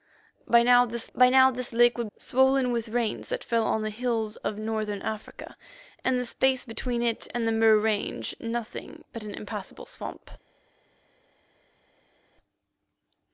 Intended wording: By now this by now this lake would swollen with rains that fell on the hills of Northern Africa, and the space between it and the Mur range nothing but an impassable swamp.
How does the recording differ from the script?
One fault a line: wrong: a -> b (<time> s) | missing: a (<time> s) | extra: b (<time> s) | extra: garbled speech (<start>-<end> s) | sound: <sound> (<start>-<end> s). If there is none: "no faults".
no faults